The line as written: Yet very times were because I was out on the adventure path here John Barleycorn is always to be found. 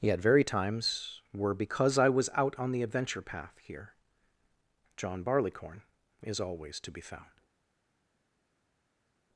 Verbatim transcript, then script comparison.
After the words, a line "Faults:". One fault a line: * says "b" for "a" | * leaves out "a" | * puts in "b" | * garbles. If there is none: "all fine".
Yet very times were because I was out on the adventure path here John Barleycorn is always to be found.
Faults:
all fine